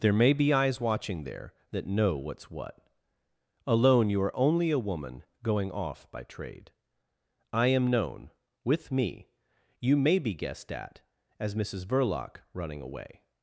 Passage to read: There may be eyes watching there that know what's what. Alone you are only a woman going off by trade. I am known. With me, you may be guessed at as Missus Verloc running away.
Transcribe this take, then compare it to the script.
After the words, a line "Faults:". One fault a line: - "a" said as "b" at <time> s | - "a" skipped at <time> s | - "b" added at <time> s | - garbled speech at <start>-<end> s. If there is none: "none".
There may be eyes watching there that know what's what. Alone you are only a woman going off by trade. I am known. With me, you may be guessed at as Missus Verloc running away.
Faults:
none